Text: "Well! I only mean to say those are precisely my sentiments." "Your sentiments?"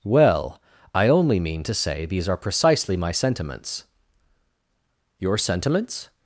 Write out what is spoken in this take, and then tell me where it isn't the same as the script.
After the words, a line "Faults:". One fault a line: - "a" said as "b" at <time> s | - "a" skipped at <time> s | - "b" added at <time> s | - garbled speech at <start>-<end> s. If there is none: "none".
"Well! I only mean to say these are precisely my sentiments." "Your sentiments?"
Faults:
- "those" said as "these" at 2.1 s